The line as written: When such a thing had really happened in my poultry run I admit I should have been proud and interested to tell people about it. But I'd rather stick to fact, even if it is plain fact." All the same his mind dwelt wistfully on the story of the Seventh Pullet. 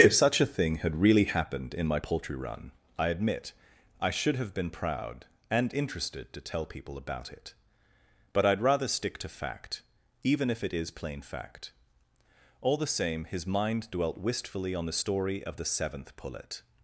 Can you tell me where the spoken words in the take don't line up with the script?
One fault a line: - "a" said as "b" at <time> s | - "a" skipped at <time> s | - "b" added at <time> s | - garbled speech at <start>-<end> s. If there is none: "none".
- "When" said as "If" at 0.0 s